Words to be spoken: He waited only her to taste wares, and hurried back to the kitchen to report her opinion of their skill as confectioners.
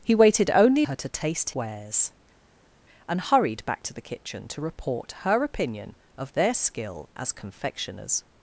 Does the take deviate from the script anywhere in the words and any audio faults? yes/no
no